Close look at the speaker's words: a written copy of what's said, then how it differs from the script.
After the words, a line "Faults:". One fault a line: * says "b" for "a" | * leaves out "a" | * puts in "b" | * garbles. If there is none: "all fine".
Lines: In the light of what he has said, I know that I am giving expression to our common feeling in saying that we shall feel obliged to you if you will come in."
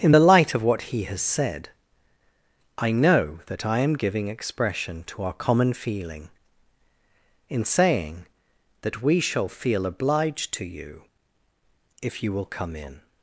In the light of what he has said, I know that I am giving expression to our common feeling in saying that we shall feel obliged to you if you will come in."
Faults:
all fine